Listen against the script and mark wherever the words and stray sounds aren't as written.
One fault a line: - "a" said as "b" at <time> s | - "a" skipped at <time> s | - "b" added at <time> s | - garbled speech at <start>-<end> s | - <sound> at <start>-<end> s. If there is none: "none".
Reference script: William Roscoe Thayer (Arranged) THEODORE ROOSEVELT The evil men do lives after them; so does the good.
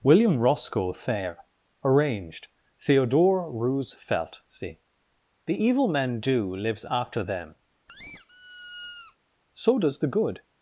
- "see" added at 4.5 s
- squeak at 7.9-9.2 s